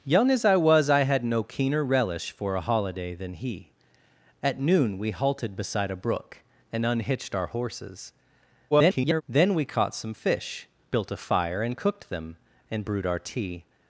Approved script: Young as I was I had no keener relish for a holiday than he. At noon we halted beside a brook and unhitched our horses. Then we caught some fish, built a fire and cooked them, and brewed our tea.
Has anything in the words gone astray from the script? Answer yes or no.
yes